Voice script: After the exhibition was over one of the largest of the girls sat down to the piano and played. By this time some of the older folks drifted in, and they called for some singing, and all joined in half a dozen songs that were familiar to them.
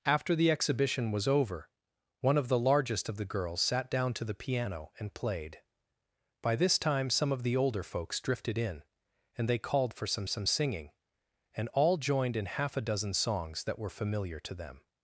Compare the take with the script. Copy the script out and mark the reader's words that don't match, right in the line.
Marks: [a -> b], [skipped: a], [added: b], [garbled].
After the exhibition was over one of the largest of the girls sat down to the piano and played. By this time some of the older folks drifted in, and they called for some [added: some] singing, and all joined in half a dozen songs that were familiar to them.